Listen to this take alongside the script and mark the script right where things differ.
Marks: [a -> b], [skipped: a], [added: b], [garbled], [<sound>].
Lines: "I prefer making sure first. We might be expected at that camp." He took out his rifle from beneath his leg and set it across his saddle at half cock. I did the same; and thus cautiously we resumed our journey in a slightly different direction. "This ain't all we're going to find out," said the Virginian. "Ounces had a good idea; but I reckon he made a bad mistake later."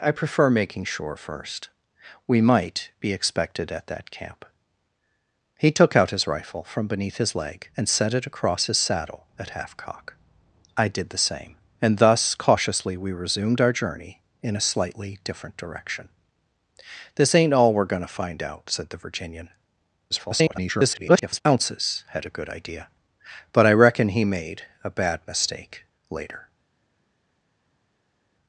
"I prefer making sure first. We might be expected at that camp." He took out his rifle from beneath his leg and set it across his saddle at half cock. I did the same; and thus cautiously we resumed our journey in a slightly different direction. "This ain't all we're going to find out," said the Virginian. [garbled] "Ounces had a good idea; but I reckon he made a bad mistake later."